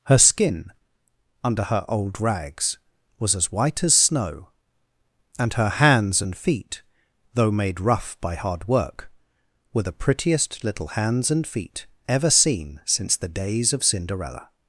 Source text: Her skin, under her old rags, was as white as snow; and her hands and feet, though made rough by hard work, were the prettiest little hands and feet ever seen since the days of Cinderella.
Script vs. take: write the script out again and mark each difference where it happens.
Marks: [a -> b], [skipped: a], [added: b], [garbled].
Her skin, under her old rags, was as white as snow; and her hands and feet, though made rough by hard work, were the prettiest little hands and feet ever seen since the days of Cinderella.